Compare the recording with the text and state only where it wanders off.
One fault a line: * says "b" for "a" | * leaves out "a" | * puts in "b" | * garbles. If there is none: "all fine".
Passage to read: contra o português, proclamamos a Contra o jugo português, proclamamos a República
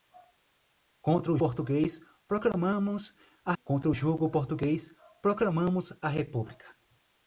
all fine